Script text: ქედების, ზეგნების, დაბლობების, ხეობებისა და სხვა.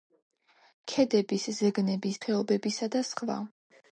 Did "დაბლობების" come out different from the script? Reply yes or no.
yes